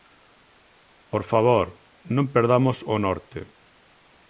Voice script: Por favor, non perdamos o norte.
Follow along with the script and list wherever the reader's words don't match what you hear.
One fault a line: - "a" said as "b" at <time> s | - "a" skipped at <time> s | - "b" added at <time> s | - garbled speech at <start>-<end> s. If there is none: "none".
none